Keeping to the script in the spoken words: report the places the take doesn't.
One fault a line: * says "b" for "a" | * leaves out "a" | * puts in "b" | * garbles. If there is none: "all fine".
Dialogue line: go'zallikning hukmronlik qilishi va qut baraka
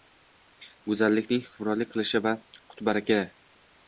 all fine